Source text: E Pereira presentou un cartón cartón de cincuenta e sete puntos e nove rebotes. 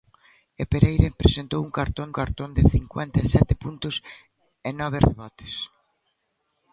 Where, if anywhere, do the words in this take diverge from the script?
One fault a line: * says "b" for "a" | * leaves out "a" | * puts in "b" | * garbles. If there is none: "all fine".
all fine